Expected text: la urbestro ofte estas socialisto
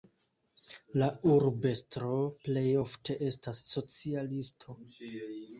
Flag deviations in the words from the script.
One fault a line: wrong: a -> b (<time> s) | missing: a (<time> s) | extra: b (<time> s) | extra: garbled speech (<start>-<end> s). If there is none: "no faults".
extra: plej (2.5 s)